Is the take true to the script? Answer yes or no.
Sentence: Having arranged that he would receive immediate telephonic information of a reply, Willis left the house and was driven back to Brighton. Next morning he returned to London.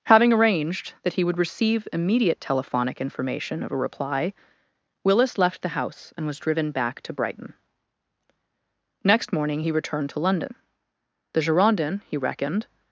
no